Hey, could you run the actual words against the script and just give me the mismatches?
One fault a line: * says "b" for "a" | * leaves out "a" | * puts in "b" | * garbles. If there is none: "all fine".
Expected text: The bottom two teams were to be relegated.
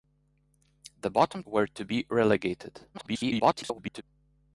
* leaves out "two teams"
* garbles